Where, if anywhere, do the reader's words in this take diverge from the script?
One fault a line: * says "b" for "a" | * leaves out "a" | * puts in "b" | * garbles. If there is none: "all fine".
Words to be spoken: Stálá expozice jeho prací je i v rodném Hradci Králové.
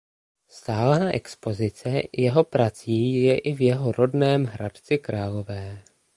* puts in "jeho"